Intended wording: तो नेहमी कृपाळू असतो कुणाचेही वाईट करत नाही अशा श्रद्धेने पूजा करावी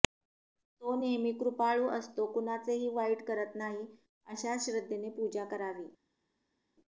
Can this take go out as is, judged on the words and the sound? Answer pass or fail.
pass